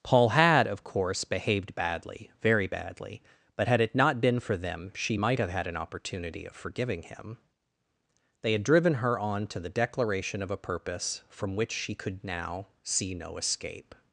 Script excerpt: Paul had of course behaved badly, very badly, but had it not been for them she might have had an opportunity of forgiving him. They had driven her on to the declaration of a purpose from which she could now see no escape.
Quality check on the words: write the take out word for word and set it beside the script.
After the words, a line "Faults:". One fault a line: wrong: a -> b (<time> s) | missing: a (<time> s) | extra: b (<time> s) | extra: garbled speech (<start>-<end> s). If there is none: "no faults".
Paul had of course behaved badly, very badly, but had it not been for them she might have had an opportunity of forgiving him. They had driven her on to the declaration of a purpose from which she could now see no escape.
Faults:
no faults